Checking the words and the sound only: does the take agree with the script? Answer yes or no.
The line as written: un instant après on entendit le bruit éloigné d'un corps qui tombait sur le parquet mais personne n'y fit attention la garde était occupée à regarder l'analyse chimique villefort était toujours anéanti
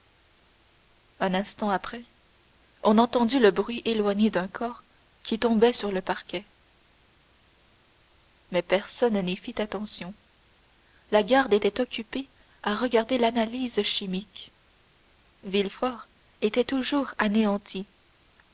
yes